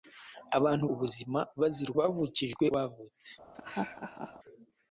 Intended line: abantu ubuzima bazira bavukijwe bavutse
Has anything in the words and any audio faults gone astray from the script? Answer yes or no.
yes